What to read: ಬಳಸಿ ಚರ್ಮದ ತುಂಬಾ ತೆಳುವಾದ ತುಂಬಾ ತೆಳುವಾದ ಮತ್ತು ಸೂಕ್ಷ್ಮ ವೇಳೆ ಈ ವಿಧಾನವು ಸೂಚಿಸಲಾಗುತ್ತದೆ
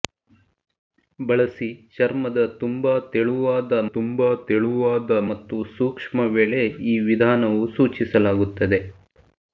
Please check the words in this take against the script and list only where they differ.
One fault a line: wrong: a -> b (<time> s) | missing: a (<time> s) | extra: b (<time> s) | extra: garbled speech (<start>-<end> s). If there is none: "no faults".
no faults